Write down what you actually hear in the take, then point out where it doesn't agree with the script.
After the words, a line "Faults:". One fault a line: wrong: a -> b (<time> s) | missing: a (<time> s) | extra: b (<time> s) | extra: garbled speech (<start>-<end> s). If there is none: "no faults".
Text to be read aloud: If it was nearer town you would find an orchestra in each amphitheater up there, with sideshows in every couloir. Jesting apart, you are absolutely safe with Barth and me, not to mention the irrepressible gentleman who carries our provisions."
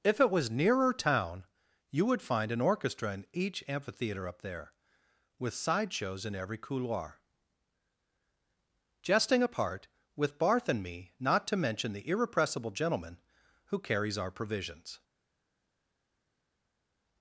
If it was nearer town you would find an orchestra in each amphitheater up there, with sideshows in every couloir. Jesting apart, with Barth and me, not to mention the irrepressible gentleman who carries our provisions."
Faults:
missing: you are absolutely safe (9.9 s)